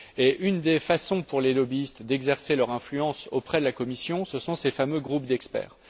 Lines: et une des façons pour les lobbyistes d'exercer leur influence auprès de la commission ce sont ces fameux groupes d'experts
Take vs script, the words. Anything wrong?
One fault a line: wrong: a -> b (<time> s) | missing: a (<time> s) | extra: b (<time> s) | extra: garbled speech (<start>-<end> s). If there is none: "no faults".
no faults